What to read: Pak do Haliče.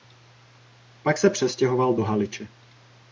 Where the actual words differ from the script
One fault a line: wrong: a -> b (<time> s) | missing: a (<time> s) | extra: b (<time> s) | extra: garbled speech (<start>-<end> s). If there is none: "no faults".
extra: se přestěhoval (1.2 s)